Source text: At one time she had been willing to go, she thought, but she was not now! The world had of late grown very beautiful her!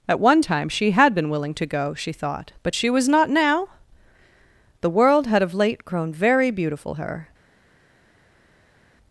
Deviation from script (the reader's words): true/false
false